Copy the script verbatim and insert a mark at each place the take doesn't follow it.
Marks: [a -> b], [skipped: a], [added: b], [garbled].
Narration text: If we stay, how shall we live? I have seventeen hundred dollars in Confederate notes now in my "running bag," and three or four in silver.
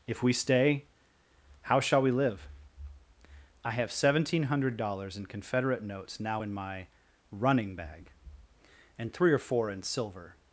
If we stay, how shall we live? I have seventeen hundred dollars in Confederate notes now in my "running bag," and three or four in silver.